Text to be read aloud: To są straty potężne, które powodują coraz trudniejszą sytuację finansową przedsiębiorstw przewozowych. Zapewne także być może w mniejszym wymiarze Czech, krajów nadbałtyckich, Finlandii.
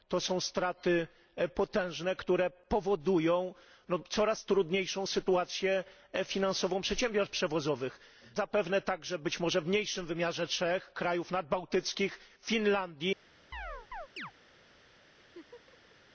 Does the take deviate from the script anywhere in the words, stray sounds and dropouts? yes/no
yes